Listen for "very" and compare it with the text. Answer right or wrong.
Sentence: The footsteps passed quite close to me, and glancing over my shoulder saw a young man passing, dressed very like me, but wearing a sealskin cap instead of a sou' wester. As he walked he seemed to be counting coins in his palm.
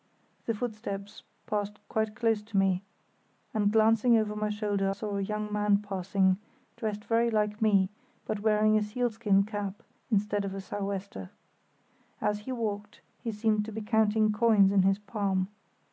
right